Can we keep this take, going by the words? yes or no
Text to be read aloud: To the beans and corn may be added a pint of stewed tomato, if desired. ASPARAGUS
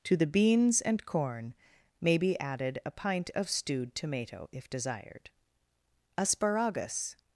yes